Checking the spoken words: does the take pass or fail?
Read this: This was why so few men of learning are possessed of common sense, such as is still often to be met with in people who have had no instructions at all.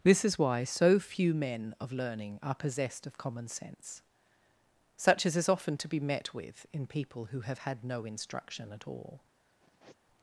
fail